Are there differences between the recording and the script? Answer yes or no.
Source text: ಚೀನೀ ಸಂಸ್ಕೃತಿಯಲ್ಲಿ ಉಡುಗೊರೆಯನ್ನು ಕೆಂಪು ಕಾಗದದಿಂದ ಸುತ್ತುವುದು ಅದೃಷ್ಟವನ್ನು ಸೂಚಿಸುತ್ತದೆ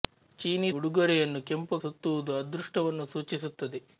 yes